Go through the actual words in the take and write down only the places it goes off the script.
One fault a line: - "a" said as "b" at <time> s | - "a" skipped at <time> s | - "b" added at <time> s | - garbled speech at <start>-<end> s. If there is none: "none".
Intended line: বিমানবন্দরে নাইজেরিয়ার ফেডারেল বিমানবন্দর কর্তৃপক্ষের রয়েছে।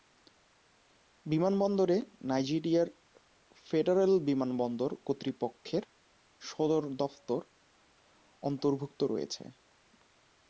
- "সদর দফতর অন্তর্ভুক্ত" added at 6.4 s